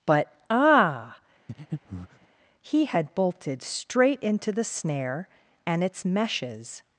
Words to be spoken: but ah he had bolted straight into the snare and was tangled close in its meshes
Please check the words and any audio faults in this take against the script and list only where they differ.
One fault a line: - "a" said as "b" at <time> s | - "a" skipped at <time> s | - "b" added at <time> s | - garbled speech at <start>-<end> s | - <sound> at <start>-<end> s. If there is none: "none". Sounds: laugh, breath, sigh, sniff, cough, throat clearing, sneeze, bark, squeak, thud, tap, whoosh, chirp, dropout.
- breath at 1.5-2.3 s
- "was tangled close in" skipped at 5.8 s